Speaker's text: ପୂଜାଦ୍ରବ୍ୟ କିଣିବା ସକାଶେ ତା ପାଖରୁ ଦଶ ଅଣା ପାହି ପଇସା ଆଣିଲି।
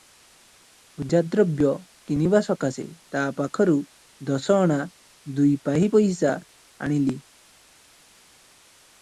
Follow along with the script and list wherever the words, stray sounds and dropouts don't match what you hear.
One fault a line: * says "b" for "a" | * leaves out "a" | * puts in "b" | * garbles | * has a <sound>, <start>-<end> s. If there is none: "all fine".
* puts in "ଦୁଇ"